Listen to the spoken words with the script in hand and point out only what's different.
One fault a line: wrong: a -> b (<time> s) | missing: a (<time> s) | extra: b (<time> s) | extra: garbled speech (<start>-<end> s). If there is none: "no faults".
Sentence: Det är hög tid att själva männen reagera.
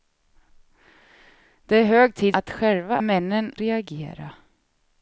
no faults